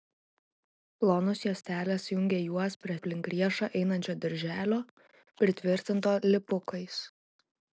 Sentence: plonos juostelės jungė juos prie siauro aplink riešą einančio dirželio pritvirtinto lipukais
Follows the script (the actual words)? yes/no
no